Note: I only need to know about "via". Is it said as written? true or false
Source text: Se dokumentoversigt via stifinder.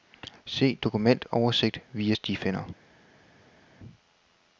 true